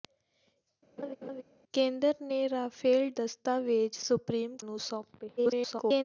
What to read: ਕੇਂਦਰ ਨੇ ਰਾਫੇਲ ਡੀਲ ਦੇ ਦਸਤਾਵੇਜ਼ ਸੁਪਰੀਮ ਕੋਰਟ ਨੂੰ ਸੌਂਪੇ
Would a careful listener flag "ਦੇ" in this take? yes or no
yes